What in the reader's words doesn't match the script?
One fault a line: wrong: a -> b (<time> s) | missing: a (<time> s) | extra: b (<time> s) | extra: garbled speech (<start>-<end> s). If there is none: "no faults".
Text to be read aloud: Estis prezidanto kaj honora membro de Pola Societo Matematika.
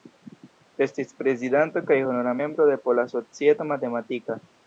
no faults